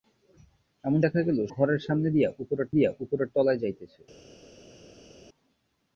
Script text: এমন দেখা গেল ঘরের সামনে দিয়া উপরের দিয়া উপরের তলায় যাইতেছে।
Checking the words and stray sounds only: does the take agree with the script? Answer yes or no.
yes